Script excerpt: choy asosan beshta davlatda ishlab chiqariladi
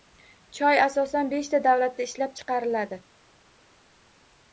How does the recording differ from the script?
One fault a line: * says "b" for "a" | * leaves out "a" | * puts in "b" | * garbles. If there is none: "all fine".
all fine